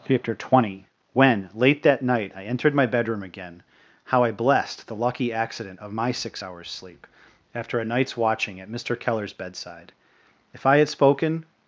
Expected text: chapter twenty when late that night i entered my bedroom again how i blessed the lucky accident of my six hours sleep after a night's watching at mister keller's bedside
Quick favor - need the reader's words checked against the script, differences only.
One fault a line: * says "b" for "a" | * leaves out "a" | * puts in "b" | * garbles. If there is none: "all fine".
* puts in "if i had spoken"